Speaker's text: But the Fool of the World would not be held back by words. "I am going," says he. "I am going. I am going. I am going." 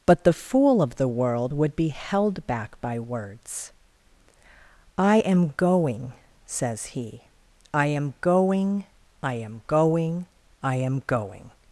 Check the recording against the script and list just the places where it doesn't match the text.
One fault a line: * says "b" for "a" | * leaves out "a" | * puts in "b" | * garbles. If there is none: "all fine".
* leaves out "not"